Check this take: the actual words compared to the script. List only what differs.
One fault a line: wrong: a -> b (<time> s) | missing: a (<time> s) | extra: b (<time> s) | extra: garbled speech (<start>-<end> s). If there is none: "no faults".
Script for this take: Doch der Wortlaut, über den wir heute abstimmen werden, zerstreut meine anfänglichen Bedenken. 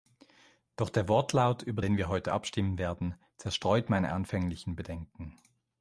no faults